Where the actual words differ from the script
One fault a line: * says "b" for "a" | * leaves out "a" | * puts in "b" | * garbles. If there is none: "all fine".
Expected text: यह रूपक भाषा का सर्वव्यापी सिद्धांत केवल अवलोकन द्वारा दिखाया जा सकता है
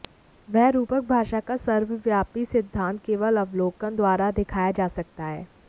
* says "वह" for "यह"